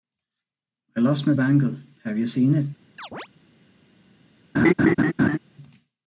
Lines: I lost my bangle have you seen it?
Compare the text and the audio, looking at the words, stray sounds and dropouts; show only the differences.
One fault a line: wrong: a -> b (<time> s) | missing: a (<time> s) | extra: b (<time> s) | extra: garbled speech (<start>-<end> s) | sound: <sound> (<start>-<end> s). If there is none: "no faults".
sound: chirp (3.0-3.3 s)
sound: laugh (4.5-5.4 s)